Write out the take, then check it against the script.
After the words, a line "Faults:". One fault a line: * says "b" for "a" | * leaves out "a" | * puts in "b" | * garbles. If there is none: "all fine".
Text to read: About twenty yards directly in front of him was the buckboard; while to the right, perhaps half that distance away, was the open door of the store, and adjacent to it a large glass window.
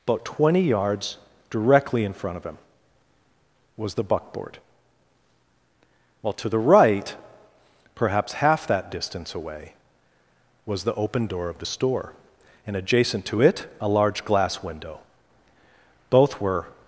About twenty yards directly in front of him was the buckboard; while to the right, perhaps half that distance away, was the open door of the store, and adjacent to it a large glass window. Both were
Faults:
* puts in "Both were"